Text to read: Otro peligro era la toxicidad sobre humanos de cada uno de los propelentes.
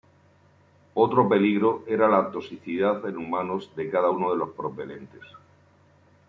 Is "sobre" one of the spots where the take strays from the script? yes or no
yes